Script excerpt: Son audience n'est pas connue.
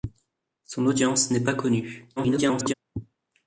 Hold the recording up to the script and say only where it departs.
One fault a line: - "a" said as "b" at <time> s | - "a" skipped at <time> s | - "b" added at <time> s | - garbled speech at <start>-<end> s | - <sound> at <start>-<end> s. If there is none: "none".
- garbled speech at 2.2-2.7 s